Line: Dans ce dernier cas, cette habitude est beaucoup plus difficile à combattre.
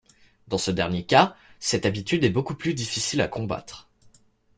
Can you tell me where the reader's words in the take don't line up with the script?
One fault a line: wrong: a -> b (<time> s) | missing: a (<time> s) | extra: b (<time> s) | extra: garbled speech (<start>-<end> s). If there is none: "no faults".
no faults